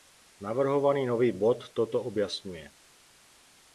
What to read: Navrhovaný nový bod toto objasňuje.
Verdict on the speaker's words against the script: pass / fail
pass